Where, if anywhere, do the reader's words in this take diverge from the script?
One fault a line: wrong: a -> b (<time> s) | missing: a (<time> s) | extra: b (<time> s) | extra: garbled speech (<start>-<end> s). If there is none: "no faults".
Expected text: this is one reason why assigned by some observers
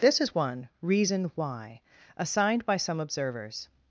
no faults